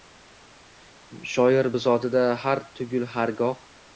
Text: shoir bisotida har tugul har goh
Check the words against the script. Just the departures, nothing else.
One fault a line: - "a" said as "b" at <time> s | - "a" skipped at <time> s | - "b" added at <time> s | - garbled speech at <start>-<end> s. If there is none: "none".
none